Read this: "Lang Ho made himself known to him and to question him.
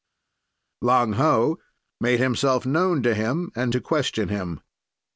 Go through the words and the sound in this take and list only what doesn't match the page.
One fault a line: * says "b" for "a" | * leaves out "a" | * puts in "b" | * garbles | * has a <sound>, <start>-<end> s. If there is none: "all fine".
all fine